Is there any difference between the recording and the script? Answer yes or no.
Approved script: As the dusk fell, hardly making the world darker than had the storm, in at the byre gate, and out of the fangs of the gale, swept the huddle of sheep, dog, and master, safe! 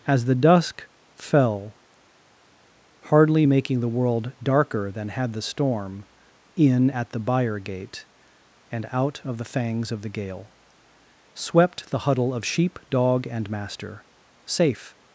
no